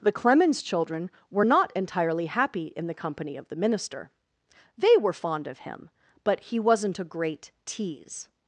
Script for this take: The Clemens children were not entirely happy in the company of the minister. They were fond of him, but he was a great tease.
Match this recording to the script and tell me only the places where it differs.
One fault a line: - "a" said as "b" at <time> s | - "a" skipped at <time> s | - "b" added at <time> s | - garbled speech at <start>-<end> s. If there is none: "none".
- "was" said as "wasn't" at 6.6 s